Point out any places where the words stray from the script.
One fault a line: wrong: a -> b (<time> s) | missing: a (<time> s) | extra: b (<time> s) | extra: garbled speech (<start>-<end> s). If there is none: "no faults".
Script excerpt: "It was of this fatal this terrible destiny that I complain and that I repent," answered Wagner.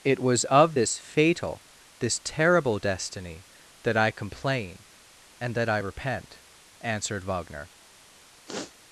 no faults